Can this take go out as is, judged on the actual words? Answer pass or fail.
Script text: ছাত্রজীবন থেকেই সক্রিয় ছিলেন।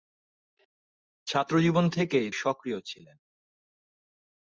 pass